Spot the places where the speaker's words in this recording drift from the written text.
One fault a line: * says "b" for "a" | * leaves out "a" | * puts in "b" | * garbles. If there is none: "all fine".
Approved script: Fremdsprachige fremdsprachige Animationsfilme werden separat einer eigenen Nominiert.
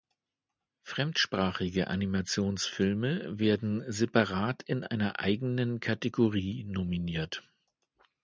* leaves out "fremdsprachige"
* puts in "in"
* puts in "Kategorie"